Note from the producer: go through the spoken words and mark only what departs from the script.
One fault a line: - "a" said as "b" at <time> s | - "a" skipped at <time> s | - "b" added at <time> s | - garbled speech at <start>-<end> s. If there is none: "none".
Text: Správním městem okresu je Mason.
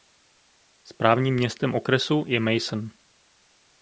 none